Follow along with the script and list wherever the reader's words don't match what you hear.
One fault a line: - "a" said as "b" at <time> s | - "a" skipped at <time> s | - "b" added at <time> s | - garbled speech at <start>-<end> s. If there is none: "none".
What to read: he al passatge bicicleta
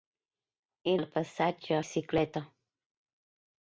none